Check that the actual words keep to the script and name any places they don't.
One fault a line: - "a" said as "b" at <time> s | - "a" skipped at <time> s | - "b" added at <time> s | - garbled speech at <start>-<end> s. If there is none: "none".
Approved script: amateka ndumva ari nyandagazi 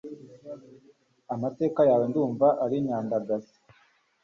- "yawe" added at 1.9 s